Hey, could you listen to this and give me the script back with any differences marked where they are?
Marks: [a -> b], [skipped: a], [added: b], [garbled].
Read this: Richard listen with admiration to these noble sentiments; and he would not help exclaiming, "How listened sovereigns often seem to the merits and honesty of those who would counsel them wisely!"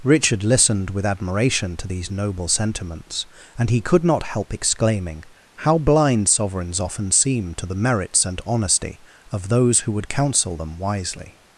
Richard [listen -> listened] with admiration to these noble sentiments; and he [would -> could] not help exclaiming, "How [listened -> blind] sovereigns often seem to the merits and honesty of those who would counsel them wisely!"